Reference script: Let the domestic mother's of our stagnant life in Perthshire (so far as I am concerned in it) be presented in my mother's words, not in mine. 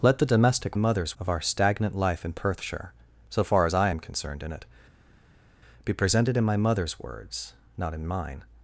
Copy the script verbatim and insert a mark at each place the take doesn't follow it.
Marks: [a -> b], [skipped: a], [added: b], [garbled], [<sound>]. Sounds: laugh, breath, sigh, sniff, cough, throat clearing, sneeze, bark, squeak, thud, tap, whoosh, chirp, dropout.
Let the domestic mother's of our stagnant life in Perthshire (so far as I am concerned in it) be presented in my mother's words, not in mine.